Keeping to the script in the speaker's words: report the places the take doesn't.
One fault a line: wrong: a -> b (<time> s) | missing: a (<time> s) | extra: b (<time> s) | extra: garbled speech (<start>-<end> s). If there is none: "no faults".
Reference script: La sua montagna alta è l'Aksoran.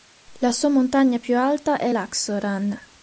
extra: più (1.2 s)